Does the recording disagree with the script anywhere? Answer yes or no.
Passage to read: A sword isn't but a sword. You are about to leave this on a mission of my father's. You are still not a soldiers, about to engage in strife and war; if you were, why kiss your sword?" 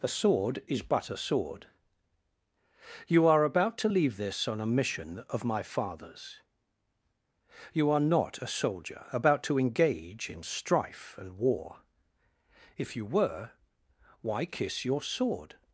yes